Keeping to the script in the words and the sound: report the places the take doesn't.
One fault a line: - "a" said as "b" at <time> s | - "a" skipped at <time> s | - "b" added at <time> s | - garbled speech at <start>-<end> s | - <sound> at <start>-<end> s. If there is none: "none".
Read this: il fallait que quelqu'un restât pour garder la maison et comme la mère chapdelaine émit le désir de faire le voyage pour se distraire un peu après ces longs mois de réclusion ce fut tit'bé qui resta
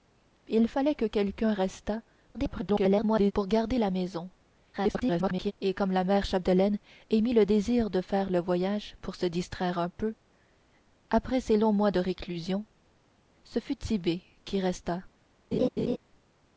- garbled speech at 2.3-3.3 s
- garbled speech at 4.7-5.5 s
- laugh at 15.5-16.0 s